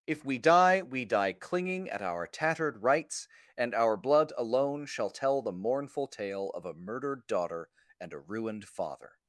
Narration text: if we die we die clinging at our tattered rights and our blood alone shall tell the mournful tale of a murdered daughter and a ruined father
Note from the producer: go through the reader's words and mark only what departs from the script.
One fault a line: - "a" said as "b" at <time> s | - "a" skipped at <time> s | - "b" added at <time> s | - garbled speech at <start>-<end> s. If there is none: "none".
none